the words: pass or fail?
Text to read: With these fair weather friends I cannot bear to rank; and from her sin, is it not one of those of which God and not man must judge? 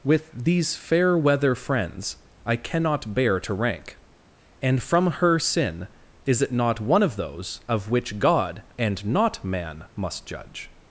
pass